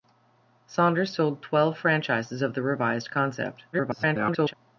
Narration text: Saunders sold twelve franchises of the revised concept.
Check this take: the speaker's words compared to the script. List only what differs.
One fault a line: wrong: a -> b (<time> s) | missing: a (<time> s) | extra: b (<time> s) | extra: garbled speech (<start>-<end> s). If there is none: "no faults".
extra: garbled speech (3.7-4.5 s)